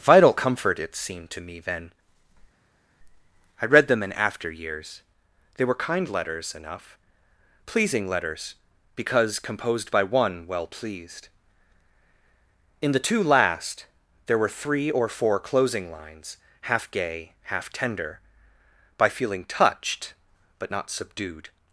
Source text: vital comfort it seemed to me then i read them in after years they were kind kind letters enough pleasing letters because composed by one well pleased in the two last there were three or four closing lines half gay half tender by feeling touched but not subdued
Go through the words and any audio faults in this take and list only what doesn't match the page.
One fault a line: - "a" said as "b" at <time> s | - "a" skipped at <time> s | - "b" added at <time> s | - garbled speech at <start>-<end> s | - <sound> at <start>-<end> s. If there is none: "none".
- "kind" skipped at 6.1 s